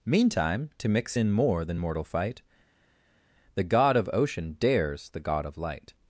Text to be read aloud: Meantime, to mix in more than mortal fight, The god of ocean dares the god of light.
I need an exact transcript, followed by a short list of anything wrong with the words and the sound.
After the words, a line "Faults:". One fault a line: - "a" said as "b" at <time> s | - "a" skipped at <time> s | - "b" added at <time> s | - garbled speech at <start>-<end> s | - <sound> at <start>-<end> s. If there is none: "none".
Meantime, to mix in more than mortal fight, The god of ocean dares the god of light.
Faults:
none